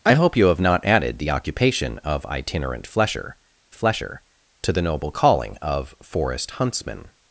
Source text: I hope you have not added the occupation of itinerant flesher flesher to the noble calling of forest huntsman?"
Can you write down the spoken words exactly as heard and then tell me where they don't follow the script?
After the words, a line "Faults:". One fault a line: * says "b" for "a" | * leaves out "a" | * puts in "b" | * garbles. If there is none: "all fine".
I hope you have not added the occupation of itinerant flesher flesher to the noble calling of forest huntsman?"
Faults:
all fine